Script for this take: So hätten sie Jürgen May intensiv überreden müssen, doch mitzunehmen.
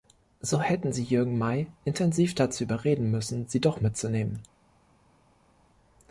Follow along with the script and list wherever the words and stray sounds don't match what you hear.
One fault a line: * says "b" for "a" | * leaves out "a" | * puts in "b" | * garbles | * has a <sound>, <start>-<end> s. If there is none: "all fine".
* puts in "dazu"
* puts in "sie"